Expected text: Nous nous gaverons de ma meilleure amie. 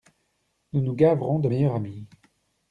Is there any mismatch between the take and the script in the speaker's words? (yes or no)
yes